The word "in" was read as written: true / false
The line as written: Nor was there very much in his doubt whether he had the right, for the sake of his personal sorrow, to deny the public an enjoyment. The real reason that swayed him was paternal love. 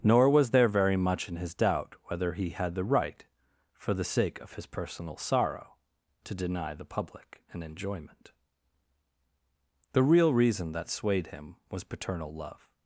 true